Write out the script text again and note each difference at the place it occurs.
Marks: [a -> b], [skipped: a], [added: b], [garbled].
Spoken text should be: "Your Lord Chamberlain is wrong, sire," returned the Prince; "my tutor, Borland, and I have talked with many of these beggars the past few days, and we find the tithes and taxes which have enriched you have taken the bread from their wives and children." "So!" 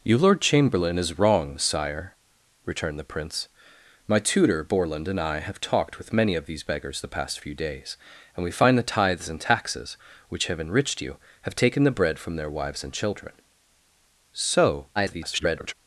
"Your Lord Chamberlain is wrong, sire," returned the Prince; "my tutor, Borland, and I have talked with many of these beggars the past few days, and we find the tithes and taxes which have enriched you have taken the bread from their wives and children." "So!" [garbled]